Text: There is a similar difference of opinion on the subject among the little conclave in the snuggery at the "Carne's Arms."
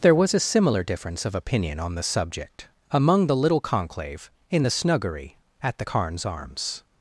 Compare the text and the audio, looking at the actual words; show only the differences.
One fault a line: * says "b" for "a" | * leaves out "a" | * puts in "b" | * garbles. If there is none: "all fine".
* says "was" for "is"